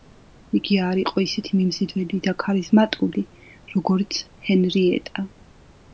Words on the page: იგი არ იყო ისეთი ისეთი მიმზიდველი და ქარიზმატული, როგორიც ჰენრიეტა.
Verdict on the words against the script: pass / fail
fail